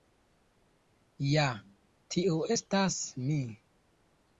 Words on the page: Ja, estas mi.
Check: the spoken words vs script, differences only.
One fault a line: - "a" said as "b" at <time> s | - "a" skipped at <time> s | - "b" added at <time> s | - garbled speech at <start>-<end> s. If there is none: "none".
- "tiu" added at 2.2 s